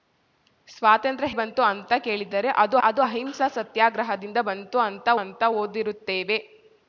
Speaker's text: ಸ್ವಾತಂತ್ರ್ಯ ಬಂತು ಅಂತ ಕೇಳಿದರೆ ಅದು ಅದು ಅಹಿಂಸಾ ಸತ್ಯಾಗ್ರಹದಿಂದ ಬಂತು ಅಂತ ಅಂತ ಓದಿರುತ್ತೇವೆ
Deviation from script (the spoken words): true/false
false